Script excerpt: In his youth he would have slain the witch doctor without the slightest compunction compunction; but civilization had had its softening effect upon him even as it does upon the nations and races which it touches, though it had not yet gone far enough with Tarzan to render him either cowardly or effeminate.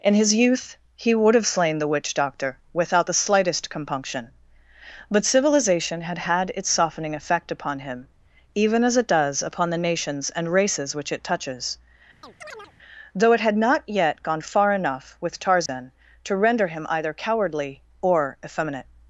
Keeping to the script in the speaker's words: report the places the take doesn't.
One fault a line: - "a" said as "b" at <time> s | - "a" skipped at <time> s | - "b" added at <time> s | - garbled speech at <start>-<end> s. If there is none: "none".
- "compunction" skipped at 4.3 s